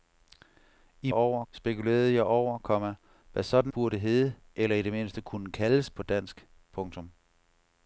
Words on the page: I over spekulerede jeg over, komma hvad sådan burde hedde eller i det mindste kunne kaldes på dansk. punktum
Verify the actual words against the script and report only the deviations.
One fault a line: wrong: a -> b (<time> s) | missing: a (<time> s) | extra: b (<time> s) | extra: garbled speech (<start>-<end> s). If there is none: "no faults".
no faults